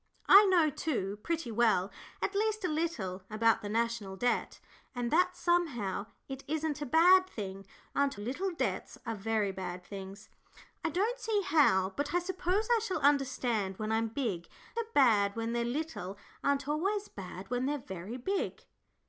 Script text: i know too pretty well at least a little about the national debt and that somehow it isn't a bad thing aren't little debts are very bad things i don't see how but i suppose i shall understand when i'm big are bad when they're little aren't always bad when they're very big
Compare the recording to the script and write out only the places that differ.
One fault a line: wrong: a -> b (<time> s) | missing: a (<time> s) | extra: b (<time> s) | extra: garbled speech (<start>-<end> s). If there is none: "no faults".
no faults